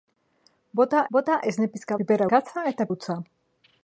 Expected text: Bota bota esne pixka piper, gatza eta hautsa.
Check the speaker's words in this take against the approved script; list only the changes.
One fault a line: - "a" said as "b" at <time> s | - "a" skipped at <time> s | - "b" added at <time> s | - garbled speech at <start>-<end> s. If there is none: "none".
none